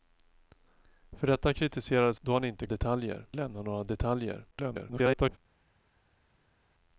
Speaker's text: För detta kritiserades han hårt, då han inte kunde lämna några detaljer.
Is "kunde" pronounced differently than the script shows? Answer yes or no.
yes